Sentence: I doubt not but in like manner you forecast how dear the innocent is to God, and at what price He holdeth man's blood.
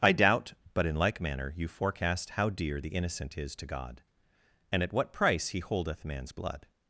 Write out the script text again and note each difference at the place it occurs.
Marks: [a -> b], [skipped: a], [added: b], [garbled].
I doubt [skipped: not] but in like manner you forecast how dear the innocent is to God, and at what price He holdeth man's blood.